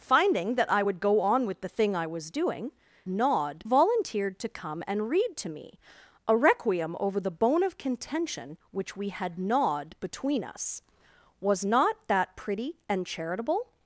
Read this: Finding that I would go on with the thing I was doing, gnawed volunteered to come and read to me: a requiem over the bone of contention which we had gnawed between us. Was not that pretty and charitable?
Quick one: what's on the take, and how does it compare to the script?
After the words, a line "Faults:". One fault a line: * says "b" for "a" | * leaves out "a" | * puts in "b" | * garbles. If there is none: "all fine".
Finding that I would go on with the thing I was doing, gnawed volunteered to come and read to me: a requiem over the bone of contention which we had gnawed between us. Was not that pretty and charitable?
Faults:
all fine